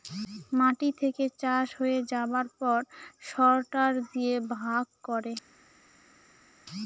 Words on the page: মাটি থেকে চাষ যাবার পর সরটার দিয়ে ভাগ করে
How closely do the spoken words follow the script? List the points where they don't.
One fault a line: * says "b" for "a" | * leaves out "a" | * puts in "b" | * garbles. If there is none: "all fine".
* puts in "হয়ে"